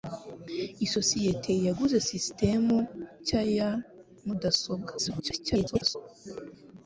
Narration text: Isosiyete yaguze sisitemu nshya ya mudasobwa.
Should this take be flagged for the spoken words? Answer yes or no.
yes